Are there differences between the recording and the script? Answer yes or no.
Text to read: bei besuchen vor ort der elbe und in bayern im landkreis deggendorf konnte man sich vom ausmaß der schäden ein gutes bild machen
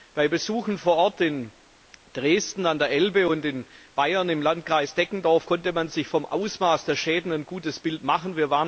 yes